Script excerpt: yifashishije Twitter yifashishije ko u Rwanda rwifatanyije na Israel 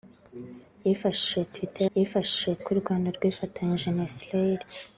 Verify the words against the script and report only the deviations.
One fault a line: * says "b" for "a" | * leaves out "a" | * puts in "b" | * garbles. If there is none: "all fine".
all fine